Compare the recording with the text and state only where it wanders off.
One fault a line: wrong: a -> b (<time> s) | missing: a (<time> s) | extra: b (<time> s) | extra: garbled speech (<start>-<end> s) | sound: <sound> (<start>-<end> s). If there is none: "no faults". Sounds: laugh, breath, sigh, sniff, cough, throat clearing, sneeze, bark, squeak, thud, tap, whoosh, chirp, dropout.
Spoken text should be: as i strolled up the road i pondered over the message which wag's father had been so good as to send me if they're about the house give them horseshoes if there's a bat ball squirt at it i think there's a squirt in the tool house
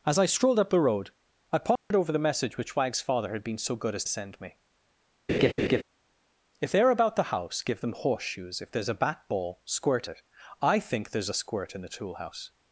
sound: dropout (1.8-1.9 s)
missing: to (4.0 s)
sound: laugh (5.3-5.8 s)
missing: at (10.1 s)